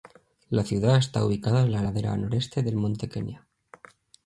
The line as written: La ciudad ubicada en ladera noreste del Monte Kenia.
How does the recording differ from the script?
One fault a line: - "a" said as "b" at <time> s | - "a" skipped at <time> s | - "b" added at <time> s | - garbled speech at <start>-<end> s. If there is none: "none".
- "está" added at 1.0 s
- "la" added at 1.7 s